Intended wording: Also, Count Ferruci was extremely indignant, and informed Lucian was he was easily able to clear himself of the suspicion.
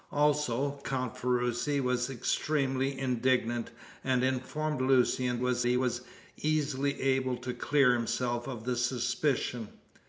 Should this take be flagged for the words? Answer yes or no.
no